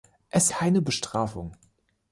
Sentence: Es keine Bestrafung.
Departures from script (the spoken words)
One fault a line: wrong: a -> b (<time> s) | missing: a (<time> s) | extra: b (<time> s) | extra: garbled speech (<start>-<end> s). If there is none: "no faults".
no faults